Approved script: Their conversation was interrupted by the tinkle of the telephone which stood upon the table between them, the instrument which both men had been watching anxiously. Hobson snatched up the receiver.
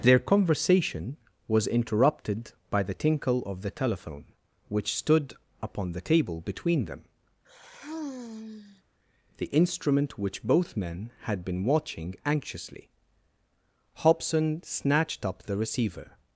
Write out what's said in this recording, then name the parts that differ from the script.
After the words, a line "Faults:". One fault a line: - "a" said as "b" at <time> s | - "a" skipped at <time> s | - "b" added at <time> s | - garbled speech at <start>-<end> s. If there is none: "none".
Their conversation was interrupted by the tinkle of the telephone which stood upon the table between them, the instrument which both men had been watching anxiously. Hobson snatched up the receiver.
Faults:
none